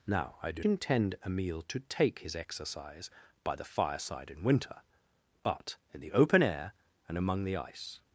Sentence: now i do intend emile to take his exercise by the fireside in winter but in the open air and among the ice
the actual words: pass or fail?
pass